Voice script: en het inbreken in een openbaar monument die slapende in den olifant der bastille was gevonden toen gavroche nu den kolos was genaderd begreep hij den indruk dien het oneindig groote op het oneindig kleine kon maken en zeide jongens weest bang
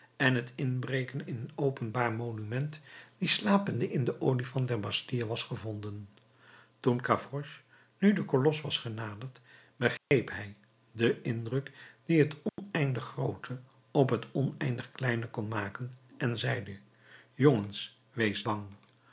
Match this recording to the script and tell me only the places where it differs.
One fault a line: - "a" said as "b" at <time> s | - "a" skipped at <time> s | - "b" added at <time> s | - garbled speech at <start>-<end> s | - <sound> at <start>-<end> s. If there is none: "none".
- dropout at 10.0-10.1 s
- dropout at 12.5-12.6 s